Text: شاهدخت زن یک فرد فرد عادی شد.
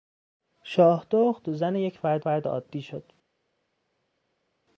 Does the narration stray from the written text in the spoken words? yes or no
no